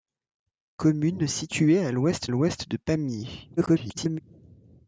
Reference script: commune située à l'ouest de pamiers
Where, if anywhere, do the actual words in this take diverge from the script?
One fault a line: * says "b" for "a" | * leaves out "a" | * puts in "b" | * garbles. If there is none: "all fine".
* puts in "l'ouest"
* garbles